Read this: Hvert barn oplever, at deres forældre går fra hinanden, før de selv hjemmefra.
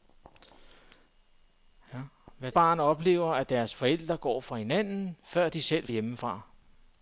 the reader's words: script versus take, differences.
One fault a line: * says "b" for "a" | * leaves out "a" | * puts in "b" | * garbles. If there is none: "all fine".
all fine